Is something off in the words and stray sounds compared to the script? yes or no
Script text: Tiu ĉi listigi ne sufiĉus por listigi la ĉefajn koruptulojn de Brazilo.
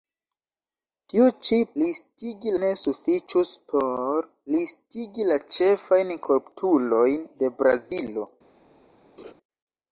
yes